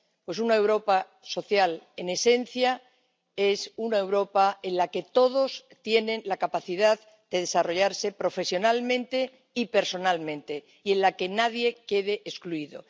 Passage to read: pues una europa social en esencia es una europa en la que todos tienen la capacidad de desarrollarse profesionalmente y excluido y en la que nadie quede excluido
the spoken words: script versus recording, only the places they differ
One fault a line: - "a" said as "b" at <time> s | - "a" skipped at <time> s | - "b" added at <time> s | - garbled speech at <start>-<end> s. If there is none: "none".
- "excluido" said as "personalmente" at 9.7 s